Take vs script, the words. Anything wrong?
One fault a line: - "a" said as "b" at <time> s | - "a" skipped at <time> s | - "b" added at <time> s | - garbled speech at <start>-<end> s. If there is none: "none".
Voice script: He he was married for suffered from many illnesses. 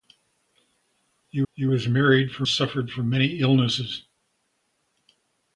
none